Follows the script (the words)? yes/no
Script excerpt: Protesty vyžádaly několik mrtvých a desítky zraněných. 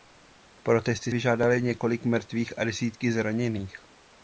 yes